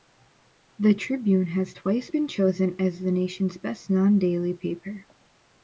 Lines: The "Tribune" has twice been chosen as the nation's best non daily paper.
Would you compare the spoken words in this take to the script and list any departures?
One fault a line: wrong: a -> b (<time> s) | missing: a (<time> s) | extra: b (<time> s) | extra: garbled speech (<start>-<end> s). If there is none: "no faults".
no faults